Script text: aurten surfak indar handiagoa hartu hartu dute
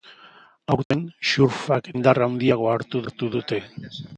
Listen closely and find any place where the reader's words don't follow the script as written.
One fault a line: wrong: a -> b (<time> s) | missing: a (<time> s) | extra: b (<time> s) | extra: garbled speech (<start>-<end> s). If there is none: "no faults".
no faults